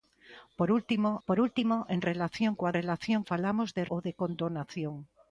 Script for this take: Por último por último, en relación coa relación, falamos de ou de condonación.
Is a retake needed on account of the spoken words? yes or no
no